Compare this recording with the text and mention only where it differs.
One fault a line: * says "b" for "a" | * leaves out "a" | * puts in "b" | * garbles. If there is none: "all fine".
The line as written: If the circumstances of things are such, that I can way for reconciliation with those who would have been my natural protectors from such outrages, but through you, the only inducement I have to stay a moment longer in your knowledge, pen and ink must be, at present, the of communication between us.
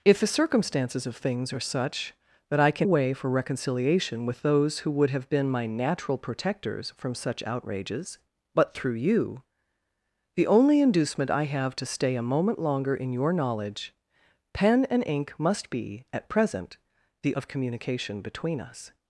all fine